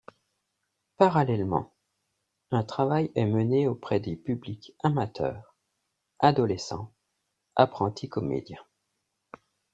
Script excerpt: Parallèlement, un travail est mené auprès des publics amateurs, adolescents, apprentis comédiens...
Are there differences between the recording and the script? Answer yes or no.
no